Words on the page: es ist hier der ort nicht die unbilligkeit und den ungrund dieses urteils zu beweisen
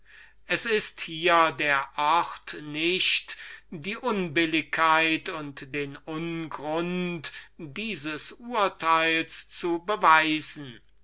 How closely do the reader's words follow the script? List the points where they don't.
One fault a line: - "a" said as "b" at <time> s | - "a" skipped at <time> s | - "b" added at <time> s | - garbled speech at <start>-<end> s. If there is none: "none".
none